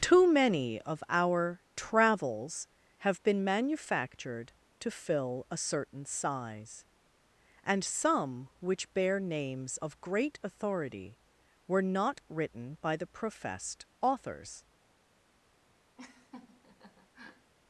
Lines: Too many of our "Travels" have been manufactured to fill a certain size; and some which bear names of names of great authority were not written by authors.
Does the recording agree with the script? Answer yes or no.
no